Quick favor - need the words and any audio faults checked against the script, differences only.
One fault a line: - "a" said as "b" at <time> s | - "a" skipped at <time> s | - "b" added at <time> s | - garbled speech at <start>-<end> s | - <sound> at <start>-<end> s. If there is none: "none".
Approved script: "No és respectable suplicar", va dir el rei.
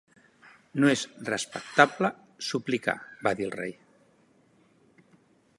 none